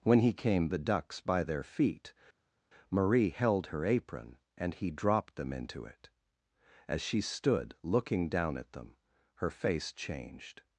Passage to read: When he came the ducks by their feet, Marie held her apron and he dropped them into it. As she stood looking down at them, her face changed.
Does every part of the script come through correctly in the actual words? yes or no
yes